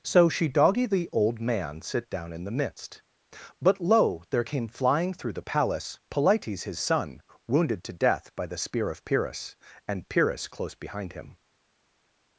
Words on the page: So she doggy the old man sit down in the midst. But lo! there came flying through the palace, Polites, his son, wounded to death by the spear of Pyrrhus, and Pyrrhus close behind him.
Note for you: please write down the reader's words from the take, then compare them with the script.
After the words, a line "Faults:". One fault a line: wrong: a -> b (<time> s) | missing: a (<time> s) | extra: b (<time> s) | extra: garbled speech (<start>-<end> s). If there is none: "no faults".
So she doggy the old man sit down in the midst. But lo! there came flying through the palace, Polites, his son, wounded to death by the spear of Pyrrhus, and Pyrrhus close behind him.
Faults:
no faults